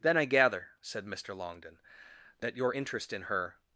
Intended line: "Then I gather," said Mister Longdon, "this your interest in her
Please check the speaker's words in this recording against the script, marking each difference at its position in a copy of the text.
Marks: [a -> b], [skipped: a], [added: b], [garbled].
"Then I gather," said Mister Longdon, ["this -> that] your interest in her